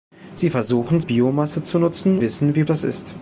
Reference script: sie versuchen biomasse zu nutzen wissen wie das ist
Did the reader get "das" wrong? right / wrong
right